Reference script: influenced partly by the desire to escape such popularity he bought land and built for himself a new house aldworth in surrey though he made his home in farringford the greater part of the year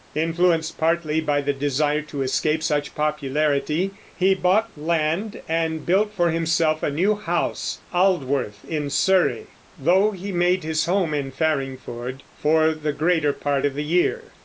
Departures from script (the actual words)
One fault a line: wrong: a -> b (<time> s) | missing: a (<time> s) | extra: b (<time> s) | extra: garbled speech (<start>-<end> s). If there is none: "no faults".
extra: for (12.3 s)